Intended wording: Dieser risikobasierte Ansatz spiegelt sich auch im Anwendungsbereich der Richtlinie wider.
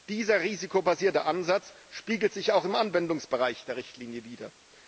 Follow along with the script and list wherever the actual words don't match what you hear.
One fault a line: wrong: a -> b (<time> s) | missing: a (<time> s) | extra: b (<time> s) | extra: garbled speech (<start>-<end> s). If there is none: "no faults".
no faults